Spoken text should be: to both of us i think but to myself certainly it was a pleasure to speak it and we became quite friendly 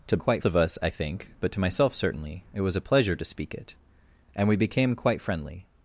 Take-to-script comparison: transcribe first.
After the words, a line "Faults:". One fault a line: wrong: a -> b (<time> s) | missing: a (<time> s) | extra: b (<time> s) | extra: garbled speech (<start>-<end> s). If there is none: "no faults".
to quite of us i think but to myself certainly it was a pleasure to speak it and we became quite friendly
Faults:
wrong: both -> quite (0.2 s)